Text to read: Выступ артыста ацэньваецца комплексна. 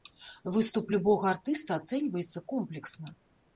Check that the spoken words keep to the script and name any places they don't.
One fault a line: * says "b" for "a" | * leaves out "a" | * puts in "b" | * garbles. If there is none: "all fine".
* puts in "любога"